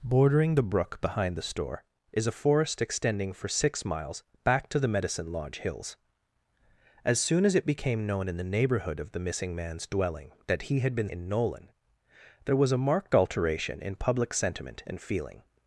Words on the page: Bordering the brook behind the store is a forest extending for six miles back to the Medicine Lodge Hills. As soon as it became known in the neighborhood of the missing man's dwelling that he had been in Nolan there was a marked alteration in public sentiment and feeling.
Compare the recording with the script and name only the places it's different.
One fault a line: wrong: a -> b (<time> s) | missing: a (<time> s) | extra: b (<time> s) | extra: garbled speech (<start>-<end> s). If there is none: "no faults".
no faults